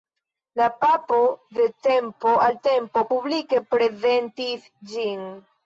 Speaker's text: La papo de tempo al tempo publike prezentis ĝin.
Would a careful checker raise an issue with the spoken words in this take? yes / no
no